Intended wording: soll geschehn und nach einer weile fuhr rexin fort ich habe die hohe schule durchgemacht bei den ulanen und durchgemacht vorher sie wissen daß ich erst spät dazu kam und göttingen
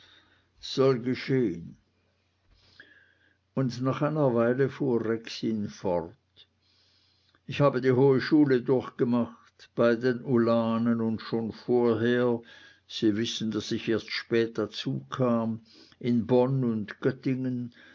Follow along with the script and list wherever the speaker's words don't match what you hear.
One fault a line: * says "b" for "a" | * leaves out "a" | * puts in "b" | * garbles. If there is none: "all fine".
* says "schon" for "durchgemacht"
* puts in "in bonn"